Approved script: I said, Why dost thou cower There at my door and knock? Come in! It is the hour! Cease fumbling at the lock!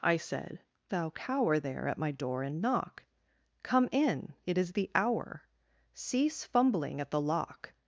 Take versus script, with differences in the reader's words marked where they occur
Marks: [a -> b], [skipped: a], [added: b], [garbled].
I said, [skipped: Why dost] thou cower There at my door and knock? Come in! It is the hour! Cease fumbling at the lock!